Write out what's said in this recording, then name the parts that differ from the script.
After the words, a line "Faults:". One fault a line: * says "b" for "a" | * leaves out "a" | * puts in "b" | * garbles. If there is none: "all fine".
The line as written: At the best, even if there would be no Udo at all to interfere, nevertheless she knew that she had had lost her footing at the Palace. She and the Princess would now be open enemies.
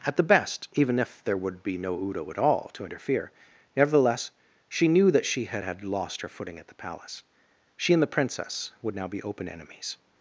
At the best, even if there would be no Udo at all to interfere, nevertheless she knew that she had had lost her footing at the Palace. She and the Princess would now be open enemies.
Faults:
all fine